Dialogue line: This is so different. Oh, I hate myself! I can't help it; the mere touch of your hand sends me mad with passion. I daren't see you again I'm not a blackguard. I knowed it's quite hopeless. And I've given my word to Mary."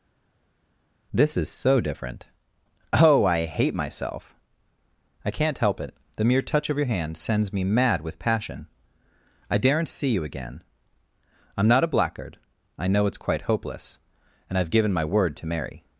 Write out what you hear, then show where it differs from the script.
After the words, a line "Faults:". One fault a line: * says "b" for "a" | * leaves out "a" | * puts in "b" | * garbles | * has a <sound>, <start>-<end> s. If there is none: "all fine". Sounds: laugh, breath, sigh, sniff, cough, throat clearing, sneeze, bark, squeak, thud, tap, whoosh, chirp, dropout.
This is so different. Oh, I hate myself! I can't help it; the mere touch of your hand sends me mad with passion. I daren't see you again I'm not a blackguard. I know it's quite hopeless. And I've given my word to Mary."
Faults:
* says "know" for "knowed"